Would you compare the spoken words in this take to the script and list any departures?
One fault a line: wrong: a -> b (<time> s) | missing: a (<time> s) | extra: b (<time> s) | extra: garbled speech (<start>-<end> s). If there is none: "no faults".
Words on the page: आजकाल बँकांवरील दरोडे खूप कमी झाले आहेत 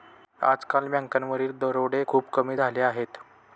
no faults